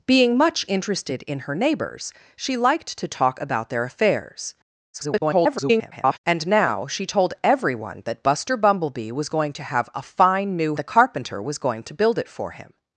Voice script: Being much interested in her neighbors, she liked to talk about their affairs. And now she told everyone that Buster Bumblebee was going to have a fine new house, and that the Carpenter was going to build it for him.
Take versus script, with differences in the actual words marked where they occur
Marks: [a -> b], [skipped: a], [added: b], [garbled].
Being much interested in her neighbors, she liked to talk about their affairs. [garbled] And now she told everyone that Buster Bumblebee was going to have a fine new [skipped: house, and that] the Carpenter was going to build it for him.